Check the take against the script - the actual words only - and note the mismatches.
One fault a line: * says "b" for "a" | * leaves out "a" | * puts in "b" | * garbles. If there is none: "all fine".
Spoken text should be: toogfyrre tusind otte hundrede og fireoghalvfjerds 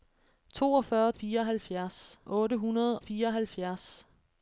* says "fireoghalvfjerds" for "tusind"
* leaves out "og"